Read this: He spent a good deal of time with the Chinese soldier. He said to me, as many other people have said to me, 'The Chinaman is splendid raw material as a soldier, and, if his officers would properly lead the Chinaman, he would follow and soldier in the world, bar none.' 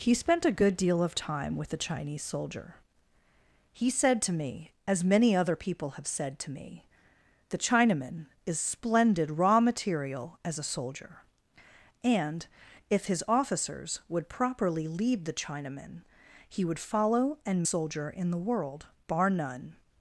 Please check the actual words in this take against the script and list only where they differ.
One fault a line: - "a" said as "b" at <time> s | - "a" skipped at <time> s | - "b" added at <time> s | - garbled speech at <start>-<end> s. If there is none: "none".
none